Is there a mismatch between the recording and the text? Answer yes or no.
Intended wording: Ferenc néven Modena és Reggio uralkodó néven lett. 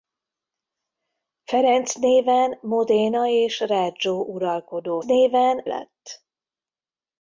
no